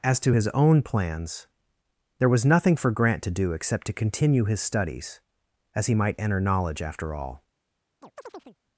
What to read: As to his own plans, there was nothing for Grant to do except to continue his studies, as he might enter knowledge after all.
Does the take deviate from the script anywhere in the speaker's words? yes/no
no